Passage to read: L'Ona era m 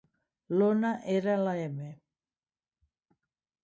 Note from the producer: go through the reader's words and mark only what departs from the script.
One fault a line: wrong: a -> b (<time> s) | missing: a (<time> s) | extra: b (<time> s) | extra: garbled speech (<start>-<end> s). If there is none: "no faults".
extra: la (1.4 s)